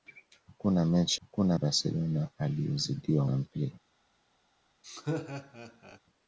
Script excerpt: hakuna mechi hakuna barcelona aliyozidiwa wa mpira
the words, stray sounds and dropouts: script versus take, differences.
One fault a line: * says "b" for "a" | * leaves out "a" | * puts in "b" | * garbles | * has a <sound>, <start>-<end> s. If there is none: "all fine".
* has a laugh, 4.8-6.0 s